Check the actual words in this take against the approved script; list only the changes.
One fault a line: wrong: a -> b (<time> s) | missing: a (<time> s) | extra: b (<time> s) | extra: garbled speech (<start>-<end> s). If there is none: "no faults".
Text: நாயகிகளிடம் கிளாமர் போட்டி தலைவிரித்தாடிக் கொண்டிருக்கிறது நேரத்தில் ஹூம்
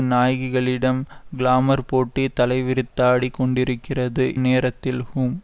no faults